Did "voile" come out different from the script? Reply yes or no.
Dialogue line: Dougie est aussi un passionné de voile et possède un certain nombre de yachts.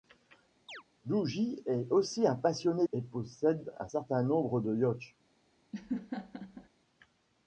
yes